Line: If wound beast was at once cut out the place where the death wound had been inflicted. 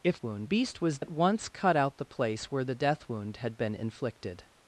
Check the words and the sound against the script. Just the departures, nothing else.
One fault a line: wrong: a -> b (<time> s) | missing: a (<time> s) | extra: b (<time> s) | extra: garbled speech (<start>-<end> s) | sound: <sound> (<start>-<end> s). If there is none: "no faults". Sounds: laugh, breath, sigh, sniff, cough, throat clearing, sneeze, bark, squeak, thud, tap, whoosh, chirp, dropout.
no faults